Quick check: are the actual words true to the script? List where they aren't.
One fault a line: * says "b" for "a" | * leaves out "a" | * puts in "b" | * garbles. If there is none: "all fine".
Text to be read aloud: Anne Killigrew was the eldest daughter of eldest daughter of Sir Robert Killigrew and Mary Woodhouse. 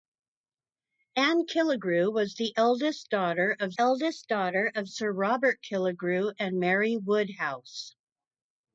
all fine